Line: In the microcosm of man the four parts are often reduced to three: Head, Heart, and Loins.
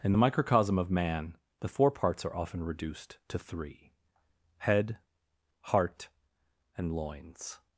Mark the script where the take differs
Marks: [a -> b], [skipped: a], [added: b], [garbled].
In the microcosm of man the four parts are often reduced to three: Head, Heart, and Loins.